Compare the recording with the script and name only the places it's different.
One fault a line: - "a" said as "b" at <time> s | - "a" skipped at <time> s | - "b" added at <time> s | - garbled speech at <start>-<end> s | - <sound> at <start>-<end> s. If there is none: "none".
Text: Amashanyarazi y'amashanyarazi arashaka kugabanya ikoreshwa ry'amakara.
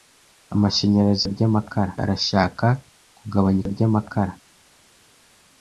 - "y'amashanyarazi" said as "ry'amakara" at 1.3 s
- "ikoreshwa" skipped at 3.6 s